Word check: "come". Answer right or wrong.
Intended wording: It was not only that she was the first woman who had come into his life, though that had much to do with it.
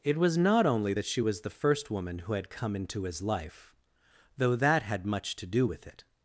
right